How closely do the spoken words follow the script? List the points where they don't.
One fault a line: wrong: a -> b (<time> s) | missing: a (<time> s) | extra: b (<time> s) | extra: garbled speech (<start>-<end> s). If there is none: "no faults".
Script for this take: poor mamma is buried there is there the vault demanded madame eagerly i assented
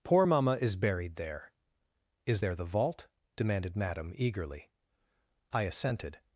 no faults